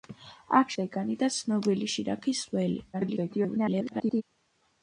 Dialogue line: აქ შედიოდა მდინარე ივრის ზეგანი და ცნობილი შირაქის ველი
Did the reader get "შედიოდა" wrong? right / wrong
wrong